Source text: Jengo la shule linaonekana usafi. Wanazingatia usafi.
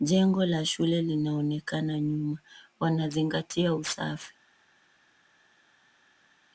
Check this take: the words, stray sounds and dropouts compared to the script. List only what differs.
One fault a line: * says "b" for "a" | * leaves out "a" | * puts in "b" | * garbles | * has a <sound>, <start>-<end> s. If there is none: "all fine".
* says "nyuma" for "usafi"